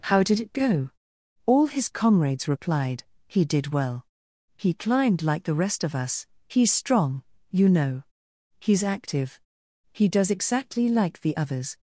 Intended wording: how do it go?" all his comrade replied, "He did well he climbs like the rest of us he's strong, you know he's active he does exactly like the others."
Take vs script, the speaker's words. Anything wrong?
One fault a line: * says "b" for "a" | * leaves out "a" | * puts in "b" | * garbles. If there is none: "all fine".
* says "did" for "do"
* says "comrades" for "comrade"
* says "climbed" for "climbs"